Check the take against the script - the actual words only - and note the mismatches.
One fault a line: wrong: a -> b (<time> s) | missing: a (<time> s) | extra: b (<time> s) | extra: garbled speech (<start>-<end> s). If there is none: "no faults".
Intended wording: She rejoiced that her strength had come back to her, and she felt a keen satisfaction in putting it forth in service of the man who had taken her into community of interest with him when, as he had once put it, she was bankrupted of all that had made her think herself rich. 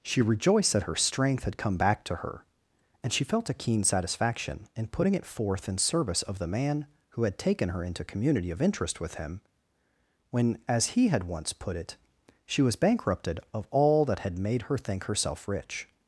no faults